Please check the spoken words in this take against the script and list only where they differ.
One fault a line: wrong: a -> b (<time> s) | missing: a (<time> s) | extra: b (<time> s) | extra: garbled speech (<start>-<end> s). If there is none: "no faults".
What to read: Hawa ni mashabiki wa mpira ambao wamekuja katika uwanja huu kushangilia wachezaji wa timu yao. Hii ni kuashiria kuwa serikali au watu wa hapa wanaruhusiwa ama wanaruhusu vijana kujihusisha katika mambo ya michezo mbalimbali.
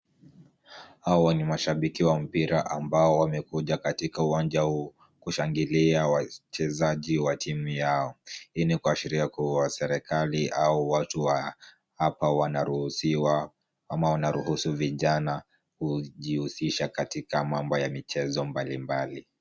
no faults